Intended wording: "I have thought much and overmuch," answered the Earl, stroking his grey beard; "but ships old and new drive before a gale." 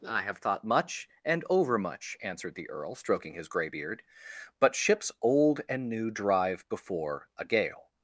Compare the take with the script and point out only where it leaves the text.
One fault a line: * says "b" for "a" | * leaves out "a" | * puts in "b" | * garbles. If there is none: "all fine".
all fine